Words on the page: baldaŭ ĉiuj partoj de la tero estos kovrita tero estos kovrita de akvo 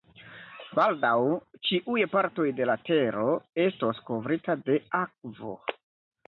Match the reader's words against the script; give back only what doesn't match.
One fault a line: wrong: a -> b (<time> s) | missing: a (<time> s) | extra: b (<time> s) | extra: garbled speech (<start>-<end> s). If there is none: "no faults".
missing: tero estos kovrita (4.6 s)